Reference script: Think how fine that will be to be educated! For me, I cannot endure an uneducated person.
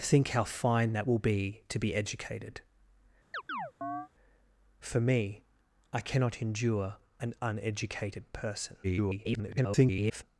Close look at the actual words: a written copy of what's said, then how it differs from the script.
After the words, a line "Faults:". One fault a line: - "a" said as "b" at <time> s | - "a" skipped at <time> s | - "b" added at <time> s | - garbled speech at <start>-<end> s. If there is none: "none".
Think how fine that will be to be educated! For me, I cannot endure an uneducated person. [garbled]
Faults:
- garbled speech at 8.8-10.2 s